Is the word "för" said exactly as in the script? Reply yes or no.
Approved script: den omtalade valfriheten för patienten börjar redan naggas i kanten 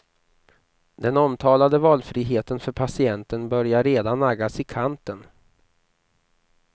yes